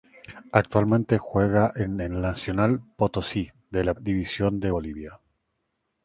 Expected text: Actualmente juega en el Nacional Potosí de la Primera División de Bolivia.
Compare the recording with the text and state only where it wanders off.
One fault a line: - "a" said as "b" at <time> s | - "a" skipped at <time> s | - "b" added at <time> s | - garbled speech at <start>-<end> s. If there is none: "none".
- "Primera" skipped at 3.9 s